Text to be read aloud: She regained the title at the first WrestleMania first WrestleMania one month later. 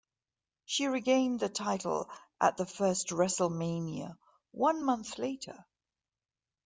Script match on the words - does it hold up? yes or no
no